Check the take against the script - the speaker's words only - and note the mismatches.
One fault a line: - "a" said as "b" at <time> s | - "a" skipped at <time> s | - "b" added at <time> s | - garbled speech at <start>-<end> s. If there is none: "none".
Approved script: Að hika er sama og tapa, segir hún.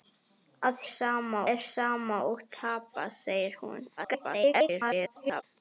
- "hika" said as "sama" at 0.9 s
- garbled speech at 4.0-5.4 s